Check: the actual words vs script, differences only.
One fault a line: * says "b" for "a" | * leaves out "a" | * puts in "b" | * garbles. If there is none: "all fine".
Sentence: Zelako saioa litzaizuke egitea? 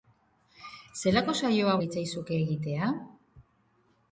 all fine